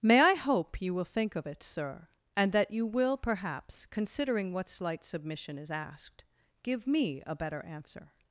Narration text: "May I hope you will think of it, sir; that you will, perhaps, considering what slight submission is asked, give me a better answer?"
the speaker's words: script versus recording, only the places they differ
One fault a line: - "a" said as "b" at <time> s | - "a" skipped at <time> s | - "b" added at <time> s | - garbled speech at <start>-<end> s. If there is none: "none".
- "and" added at 2.4 s